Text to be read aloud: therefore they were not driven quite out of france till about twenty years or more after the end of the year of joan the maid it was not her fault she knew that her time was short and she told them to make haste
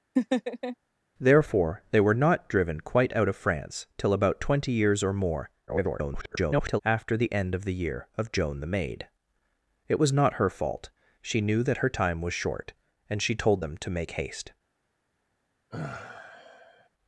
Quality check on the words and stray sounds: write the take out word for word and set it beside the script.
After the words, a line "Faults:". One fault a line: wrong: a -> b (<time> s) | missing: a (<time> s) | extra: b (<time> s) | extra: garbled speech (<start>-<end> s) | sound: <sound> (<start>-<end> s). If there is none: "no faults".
therefore they were not driven quite out of france till about twenty years or more [garbled] after the end of the year of joan the maid it was not her fault she knew that her time was short and she told them to make haste
Faults:
sound: laugh (0.2-0.8 s)
extra: garbled speech (5.7-6.8 s)
sound: sigh (15.7-16.9 s)